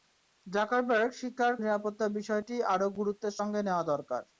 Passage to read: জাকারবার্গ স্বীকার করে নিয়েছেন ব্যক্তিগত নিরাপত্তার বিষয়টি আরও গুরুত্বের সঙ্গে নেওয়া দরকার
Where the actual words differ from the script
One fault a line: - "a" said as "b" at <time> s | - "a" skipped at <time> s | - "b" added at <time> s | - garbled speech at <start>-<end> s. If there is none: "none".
- "করে নিয়েছেন ব্যক্তিগত" skipped at 1.5 s